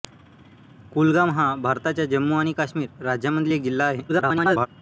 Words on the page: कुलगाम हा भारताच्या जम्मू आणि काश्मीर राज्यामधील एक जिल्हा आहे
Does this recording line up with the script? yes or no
no